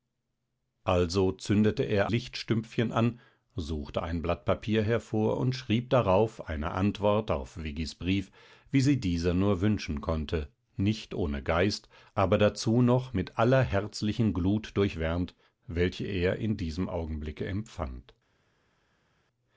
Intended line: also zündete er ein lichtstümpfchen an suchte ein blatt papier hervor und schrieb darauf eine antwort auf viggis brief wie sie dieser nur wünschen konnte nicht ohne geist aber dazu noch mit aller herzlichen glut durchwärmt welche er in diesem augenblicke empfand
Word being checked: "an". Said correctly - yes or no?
yes